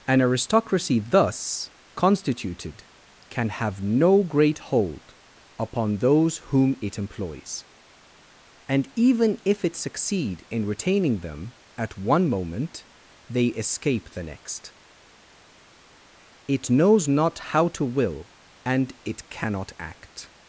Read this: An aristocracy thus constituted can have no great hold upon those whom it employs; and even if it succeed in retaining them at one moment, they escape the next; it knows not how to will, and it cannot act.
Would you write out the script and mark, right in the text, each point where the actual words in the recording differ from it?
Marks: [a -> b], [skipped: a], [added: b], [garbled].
An aristocracy thus constituted can have no great hold upon those whom it employs; and even if it succeed in retaining them at one moment, they escape the next; it knows not how to will, and it cannot act.